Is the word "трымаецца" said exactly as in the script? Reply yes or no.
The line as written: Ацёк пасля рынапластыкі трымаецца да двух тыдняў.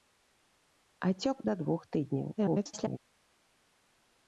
no